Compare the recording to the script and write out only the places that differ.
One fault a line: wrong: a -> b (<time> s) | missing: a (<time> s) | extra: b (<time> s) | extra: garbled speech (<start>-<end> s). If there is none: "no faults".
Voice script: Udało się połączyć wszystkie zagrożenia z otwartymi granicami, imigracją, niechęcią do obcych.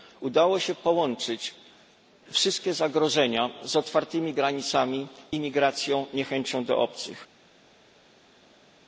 no faults